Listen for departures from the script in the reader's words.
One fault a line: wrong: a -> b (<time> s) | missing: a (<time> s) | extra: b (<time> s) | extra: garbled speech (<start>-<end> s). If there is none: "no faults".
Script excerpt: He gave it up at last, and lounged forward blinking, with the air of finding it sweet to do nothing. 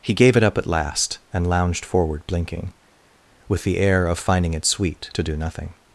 no faults